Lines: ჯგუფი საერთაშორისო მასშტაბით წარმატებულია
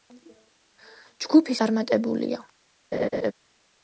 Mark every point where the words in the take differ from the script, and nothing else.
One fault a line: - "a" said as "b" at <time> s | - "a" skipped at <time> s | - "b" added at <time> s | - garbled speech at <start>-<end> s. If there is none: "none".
- "საერთაშორისო მასშტაბით" skipped at 1.6 s